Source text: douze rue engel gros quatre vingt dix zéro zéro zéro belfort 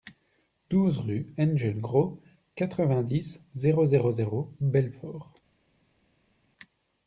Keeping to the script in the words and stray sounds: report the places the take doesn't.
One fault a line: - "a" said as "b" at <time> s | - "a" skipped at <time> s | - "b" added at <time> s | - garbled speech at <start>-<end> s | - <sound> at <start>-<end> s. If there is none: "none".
none